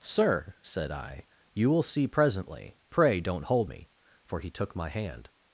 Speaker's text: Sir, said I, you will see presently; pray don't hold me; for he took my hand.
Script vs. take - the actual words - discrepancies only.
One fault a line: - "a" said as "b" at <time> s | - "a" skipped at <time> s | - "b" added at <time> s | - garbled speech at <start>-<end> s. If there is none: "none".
none